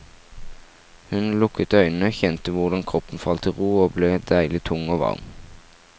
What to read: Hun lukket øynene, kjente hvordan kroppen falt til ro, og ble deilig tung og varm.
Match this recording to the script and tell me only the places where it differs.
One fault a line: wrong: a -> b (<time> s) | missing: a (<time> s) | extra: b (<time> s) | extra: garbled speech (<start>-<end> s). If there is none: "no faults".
no faults